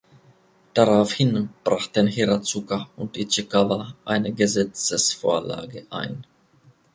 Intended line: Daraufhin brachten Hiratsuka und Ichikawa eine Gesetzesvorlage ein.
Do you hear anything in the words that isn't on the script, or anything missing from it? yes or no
no